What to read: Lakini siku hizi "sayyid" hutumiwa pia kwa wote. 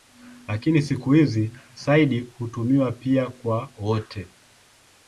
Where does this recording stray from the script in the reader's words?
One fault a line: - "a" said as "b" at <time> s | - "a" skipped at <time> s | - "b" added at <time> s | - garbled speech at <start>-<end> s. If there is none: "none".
none